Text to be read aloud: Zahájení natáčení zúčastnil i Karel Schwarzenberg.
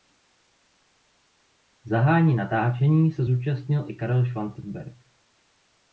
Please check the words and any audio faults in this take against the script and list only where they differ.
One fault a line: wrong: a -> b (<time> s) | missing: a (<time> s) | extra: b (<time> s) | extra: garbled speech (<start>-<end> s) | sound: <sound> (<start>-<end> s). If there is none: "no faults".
extra: se (3.1 s)